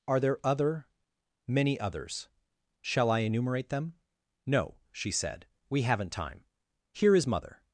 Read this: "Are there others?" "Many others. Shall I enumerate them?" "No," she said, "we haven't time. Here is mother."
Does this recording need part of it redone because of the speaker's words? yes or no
yes